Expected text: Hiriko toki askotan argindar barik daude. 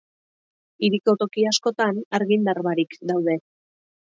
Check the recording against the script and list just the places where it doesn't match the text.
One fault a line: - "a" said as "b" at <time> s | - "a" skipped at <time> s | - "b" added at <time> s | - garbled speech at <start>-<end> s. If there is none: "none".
none